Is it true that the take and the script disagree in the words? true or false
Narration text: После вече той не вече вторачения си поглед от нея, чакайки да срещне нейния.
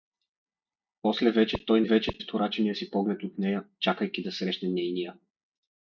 false